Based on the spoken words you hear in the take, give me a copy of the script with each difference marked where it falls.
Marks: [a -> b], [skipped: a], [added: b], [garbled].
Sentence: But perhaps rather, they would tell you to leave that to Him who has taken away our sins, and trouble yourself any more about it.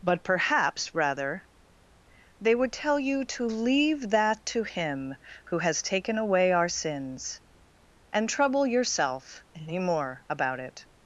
But perhaps rather, they would tell you to leave that to Him who has taken away our sins, and trouble yourself any more about it.